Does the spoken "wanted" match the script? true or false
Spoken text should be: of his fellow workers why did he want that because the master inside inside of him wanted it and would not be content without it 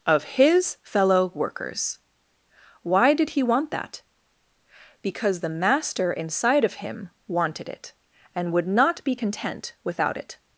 true